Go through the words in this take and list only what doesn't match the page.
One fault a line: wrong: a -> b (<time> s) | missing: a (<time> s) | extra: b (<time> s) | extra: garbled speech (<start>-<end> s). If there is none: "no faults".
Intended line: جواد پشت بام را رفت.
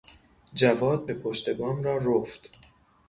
no faults